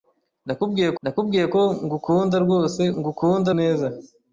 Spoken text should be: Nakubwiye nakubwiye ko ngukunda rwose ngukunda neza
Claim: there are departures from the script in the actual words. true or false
false